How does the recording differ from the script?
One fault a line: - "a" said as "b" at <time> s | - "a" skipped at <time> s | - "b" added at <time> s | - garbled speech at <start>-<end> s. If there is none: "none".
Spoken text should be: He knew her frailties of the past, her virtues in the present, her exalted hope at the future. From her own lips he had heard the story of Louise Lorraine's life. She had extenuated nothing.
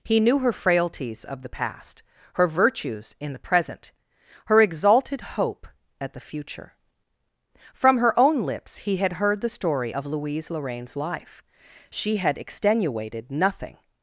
none